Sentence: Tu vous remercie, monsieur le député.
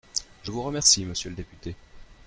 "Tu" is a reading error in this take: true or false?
true